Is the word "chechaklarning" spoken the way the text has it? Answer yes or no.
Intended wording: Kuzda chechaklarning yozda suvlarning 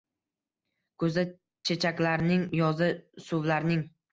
yes